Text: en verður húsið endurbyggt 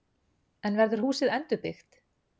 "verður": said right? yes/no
yes